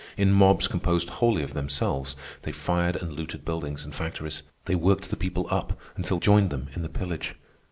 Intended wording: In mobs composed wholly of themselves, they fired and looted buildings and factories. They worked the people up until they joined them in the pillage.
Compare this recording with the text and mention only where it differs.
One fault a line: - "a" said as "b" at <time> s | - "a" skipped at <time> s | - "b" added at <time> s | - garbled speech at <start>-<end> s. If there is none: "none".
- "they" skipped at 6.2 s